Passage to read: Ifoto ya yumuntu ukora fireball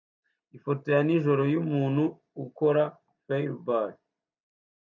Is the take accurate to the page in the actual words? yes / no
no